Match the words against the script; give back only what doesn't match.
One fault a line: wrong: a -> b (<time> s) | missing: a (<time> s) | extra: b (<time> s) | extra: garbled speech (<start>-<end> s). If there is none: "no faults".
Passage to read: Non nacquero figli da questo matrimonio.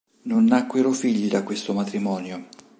no faults